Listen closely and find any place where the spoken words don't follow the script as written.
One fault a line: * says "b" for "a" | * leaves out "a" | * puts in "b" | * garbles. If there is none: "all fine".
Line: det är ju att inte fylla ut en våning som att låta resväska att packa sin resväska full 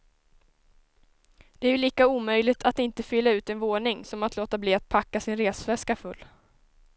* puts in "lika omöjligt"
* says "bli" for "resväska"